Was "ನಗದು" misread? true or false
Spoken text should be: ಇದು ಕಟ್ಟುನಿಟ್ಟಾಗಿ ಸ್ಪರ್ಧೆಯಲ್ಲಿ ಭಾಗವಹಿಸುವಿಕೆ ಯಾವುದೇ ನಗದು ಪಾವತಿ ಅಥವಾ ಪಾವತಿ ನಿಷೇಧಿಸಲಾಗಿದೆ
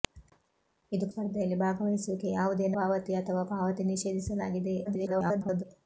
true